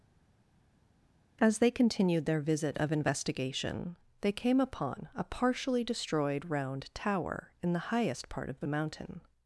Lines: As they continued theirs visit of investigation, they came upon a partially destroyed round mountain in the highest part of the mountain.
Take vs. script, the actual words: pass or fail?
fail